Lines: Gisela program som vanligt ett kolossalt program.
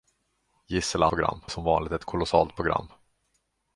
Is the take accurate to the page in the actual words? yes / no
yes